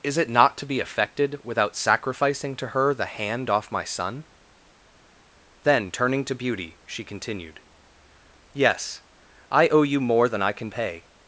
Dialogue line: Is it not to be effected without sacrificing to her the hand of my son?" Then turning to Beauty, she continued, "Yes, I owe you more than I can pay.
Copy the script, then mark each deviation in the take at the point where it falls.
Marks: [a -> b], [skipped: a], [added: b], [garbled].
Is it not to be effected without sacrificing to her the hand [of -> off] my son?" Then turning to Beauty, she continued, "Yes, I owe you more than I can pay.